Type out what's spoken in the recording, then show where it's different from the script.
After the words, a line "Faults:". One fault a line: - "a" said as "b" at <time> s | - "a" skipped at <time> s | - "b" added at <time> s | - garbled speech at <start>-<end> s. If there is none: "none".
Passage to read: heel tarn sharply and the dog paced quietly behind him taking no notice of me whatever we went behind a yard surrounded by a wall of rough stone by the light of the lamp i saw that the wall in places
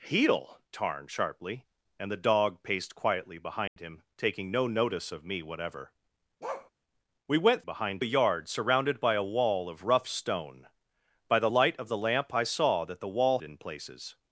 heel tarn sharply and the dog paced quietly behind him taking no notice of me whatever we went behind a yard surrounded by a wall of rough stone by the light of the lamp i saw that the wall in places
Faults:
none